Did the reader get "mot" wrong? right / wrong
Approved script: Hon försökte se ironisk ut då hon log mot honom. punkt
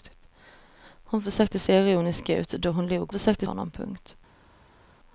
wrong